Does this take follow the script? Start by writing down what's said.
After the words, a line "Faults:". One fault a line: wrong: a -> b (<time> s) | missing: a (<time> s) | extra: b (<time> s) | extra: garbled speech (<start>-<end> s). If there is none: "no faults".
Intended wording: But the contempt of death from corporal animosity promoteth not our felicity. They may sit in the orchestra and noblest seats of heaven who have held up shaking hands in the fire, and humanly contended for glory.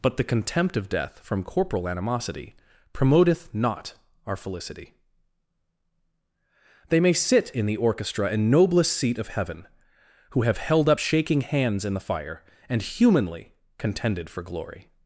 But the contempt of death from corporal animosity promoteth not our felicity. They may sit in the orchestra and noblest seat of heaven who have held up shaking hands in the fire, and humanly contended for glory.
Faults:
wrong: seats -> seat (8.9 s)